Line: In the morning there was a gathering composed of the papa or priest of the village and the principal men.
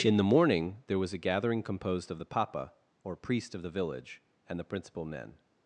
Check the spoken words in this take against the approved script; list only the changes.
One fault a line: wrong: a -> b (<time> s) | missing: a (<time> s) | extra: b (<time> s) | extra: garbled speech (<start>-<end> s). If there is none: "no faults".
no faults